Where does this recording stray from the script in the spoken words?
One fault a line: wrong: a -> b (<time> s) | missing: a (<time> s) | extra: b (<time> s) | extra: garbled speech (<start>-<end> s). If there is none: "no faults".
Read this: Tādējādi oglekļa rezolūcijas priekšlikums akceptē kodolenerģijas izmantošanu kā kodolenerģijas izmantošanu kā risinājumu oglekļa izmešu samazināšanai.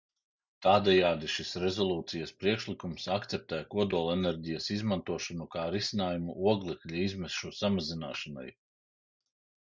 wrong: oglekļa -> šis (1.3 s)
missing: kodolenerģijas izmantošanu kā (5.7 s)